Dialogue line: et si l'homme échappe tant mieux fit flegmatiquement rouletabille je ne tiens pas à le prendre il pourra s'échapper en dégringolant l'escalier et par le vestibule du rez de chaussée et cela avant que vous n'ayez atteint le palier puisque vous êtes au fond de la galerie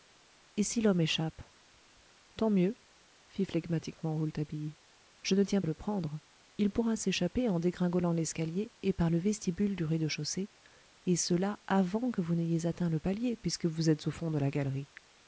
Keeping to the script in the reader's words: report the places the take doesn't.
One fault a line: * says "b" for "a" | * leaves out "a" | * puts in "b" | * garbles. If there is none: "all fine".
* leaves out "pas"